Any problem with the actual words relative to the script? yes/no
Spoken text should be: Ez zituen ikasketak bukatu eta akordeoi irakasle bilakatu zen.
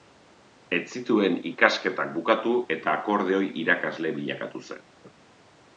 no